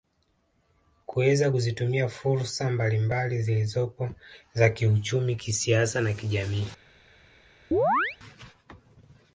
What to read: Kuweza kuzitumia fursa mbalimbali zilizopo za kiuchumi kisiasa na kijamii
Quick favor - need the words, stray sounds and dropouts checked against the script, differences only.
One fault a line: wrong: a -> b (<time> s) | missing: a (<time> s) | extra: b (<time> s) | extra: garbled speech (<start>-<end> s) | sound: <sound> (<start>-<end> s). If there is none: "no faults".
sound: chirp (7.7-8.2 s)